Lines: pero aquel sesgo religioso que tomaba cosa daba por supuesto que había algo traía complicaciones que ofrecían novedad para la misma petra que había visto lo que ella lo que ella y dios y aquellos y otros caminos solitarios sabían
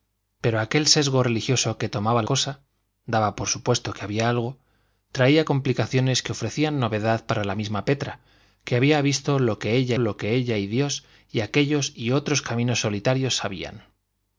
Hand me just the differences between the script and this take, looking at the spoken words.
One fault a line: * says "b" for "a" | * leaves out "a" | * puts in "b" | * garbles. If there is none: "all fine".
all fine